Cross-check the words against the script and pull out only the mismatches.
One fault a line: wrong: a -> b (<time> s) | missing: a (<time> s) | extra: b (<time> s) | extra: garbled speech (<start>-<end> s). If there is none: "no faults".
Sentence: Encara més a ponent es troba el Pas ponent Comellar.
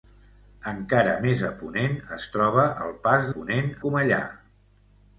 no faults